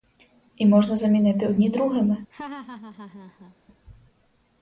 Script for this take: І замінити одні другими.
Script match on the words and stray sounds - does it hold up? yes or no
no